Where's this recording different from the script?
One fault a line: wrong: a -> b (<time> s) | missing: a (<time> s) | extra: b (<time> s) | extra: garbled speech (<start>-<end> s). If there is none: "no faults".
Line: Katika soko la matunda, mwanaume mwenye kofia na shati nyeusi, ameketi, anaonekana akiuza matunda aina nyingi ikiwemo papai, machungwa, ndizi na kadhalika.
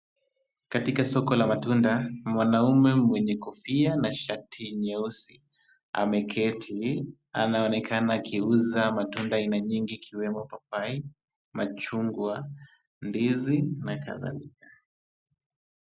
no faults